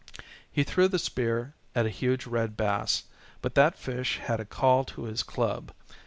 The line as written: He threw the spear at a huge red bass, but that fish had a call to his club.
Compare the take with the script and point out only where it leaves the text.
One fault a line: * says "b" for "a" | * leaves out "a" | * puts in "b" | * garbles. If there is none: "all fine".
all fine